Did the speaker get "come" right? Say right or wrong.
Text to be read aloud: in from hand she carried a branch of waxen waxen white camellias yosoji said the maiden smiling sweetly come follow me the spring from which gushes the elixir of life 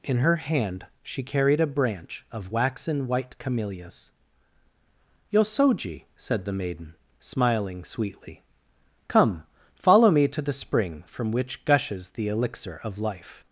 right